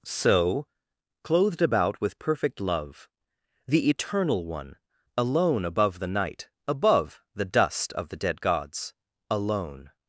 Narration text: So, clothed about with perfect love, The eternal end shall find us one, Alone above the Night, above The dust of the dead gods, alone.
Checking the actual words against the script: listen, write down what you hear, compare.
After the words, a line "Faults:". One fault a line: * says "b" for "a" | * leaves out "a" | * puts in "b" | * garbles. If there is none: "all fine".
So, clothed about with perfect love, The eternal one, Alone above the Night, above The dust of the dead gods, alone.
Faults:
* leaves out "end shall find us"